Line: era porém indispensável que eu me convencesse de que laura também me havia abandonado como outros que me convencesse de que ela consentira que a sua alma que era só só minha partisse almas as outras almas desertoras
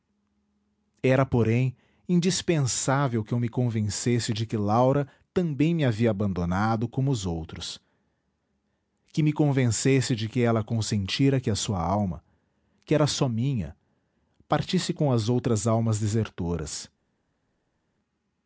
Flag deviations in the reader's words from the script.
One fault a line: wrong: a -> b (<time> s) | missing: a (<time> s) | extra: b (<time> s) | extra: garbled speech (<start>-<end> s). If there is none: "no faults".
extra: os (7.1 s)
missing: só (13.3 s)
wrong: almas -> com (14.9 s)